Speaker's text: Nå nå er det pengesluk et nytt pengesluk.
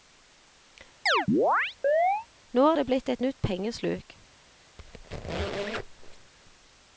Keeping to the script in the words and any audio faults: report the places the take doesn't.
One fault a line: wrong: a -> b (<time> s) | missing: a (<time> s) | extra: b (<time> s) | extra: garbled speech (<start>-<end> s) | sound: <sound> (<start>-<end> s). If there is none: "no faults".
sound: chirp (1.1-2.3 s)
missing: nå (2.6 s)
wrong: pengesluk -> blitt (2.9 s)
sound: squeak (4.8-6.3 s)